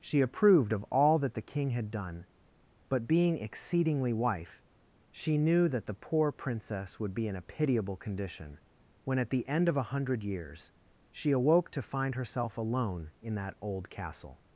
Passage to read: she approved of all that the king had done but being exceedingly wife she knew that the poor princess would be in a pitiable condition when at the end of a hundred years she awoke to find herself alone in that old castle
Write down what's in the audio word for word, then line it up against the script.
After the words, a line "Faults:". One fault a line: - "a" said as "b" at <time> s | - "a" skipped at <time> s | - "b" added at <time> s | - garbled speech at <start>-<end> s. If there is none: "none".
she approved of all that the king had done but being exceedingly wife she knew that the poor princess would be in a pitiable condition when at the end of a hundred years she awoke to find herself alone in that old castle
Faults:
none